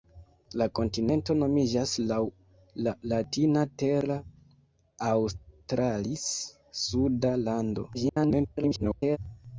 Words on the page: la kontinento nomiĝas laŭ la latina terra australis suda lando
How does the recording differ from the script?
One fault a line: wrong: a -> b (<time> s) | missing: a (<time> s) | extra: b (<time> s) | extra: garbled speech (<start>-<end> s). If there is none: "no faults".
extra: garbled speech (7.9-9.2 s)